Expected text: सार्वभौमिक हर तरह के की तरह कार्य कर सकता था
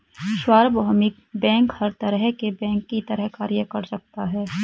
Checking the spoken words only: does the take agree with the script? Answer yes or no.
no